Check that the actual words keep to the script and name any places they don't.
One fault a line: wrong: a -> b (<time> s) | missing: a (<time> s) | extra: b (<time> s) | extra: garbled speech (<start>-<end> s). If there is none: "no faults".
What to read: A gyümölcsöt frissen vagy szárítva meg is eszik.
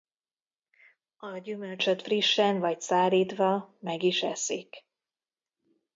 no faults